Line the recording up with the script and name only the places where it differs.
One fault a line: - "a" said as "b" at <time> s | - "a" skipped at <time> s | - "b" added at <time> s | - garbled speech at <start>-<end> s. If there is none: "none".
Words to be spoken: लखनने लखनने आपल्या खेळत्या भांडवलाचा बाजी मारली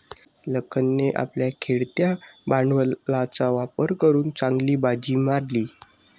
- "लखनने" skipped at 1.1 s
- "वापर करून चांगली" added at 3.5 s